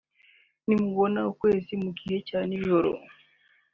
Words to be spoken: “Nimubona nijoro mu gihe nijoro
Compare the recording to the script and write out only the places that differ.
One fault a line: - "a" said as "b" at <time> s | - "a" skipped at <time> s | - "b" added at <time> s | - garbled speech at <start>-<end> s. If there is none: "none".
- "nijoro" said as "ukwezi" at 1.3 s
- "cya" added at 2.3 s